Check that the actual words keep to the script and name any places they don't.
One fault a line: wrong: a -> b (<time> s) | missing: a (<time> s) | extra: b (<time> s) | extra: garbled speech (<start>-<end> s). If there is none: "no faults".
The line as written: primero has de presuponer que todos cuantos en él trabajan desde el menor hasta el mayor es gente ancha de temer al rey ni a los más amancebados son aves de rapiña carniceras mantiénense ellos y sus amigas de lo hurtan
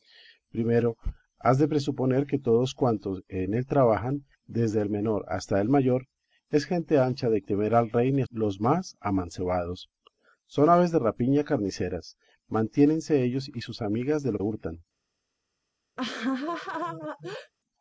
no faults